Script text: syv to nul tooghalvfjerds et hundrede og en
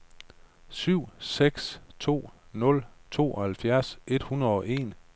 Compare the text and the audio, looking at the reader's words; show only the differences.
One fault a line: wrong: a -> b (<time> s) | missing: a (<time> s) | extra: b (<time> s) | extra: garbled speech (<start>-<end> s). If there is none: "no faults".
extra: seks (1.2 s)